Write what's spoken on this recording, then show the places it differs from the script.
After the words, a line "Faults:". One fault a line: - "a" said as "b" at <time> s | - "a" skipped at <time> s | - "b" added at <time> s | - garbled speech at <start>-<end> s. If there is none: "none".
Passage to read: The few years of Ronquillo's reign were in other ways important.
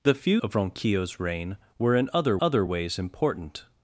The few of Ronquillo's reign were in other other ways important.
Faults:
- "years" skipped at 0.4 s
- "other" added at 2.4 s